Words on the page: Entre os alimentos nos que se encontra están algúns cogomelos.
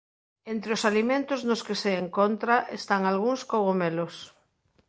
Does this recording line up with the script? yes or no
yes